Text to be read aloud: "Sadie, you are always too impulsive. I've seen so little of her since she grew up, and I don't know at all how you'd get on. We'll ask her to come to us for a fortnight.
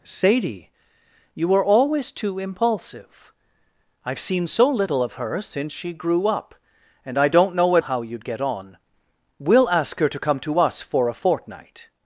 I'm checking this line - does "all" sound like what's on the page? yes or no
no